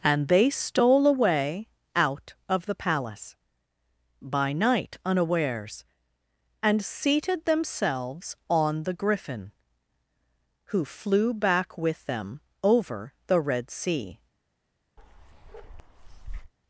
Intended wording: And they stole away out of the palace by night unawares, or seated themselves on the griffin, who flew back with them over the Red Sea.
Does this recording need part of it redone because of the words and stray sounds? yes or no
yes